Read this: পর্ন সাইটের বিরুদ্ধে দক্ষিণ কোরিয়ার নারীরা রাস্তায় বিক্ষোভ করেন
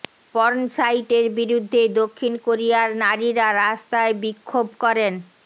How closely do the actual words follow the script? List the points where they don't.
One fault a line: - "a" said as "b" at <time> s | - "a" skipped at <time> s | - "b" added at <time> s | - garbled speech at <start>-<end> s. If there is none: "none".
none